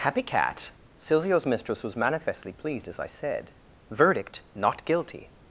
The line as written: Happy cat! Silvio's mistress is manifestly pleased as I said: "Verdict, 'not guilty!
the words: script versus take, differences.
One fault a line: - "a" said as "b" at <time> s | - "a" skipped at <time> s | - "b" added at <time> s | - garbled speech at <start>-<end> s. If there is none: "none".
- "is" said as "was" at 1.8 s